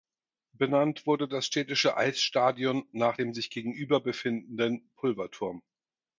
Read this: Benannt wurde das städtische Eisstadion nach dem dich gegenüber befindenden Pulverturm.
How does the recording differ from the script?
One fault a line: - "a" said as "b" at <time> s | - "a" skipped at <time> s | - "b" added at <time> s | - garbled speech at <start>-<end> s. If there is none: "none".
- "dich" said as "sich" at 3.3 s